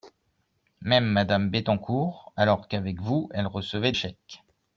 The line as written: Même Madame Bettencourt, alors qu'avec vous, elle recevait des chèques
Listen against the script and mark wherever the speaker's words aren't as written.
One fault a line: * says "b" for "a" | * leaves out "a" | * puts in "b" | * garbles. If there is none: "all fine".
* leaves out "des"